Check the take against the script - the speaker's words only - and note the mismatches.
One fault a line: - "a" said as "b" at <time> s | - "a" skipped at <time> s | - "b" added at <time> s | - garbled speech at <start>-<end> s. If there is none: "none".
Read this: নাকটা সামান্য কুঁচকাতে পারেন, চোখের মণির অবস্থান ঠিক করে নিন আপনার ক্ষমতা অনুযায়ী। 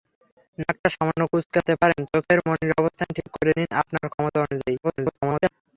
- garbled speech at 4.8-5.5 s